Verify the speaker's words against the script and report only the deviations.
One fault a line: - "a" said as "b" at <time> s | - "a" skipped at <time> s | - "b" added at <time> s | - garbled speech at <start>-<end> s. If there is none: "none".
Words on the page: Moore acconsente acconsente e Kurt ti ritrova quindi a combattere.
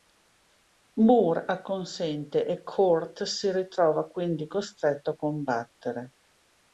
- "acconsente" skipped at 2.5 s
- "ti" said as "si" at 3.2 s
- "costretto" added at 4.5 s